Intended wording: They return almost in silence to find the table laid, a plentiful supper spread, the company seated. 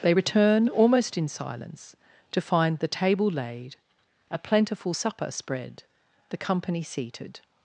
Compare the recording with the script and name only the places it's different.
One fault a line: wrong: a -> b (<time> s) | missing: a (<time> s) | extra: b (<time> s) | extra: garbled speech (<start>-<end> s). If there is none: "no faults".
no faults